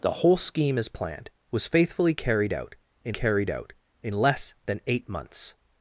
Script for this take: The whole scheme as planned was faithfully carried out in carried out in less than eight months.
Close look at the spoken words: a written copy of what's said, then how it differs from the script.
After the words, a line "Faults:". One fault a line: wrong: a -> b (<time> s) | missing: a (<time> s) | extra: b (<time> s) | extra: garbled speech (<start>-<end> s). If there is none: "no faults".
The whole scheme as planned was faithfully carried out in carried out in less than eight months.
Faults:
no faults